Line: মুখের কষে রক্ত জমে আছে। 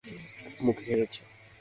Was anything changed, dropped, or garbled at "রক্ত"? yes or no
yes